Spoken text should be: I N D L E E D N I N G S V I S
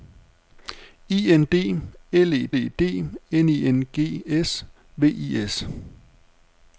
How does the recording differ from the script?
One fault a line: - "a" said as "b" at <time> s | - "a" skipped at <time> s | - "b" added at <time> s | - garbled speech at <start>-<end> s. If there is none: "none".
none